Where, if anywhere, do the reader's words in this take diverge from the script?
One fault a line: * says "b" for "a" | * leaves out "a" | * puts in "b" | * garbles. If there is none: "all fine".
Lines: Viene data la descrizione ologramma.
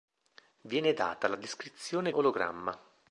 all fine